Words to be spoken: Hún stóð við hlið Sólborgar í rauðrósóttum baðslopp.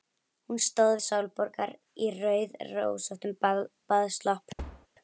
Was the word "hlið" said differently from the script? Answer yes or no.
yes